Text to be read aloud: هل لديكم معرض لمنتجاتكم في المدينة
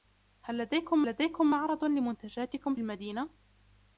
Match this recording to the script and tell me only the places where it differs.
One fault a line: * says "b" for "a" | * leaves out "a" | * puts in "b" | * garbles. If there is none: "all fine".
* puts in "لديكم"
* leaves out "في"